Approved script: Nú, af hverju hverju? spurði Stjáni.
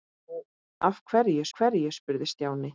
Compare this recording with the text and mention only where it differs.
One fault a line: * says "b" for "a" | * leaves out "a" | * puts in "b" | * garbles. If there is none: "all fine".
all fine